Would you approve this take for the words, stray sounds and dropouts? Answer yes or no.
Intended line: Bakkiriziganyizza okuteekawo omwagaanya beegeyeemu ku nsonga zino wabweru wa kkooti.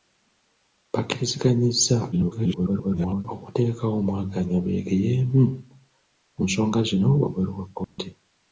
no